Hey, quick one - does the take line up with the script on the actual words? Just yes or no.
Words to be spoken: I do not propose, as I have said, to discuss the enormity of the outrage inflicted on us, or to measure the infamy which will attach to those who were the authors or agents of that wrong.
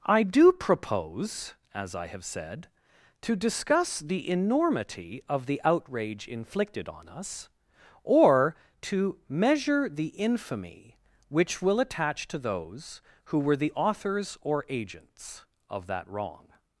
no